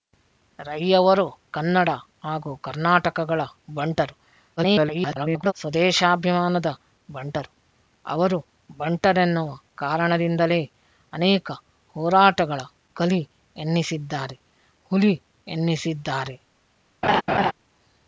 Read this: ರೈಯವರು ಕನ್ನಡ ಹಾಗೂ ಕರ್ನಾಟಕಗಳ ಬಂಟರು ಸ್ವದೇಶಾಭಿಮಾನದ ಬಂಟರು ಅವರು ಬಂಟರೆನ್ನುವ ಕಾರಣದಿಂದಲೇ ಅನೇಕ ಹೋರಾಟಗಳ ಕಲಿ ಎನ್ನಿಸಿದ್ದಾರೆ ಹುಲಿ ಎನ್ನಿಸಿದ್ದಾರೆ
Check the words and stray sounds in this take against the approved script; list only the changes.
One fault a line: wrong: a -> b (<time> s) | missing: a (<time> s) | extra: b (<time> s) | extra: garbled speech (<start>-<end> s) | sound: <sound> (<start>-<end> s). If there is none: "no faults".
extra: garbled speech (4.6-5.5 s)
sound: laugh (17.0-17.5 s)